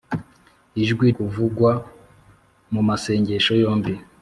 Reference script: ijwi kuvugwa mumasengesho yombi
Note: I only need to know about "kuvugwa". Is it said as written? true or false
true